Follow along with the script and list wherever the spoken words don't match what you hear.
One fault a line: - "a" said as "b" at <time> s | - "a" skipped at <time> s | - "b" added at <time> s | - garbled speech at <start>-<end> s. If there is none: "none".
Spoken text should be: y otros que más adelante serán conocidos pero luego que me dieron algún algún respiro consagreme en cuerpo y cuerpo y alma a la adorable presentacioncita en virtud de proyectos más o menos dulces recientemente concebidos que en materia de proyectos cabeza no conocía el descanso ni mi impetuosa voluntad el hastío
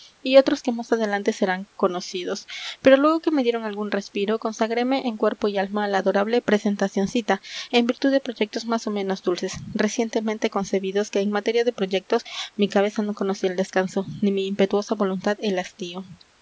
- "algún" skipped at 3.9 s
- "cuerpo y" skipped at 5.6 s
- "mi" added at 12.5 s